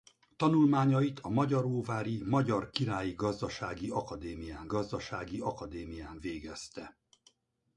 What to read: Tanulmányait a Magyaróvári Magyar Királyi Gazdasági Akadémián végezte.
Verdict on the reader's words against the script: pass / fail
fail